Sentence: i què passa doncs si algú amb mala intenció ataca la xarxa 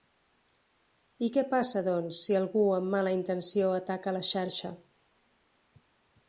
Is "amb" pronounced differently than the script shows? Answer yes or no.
no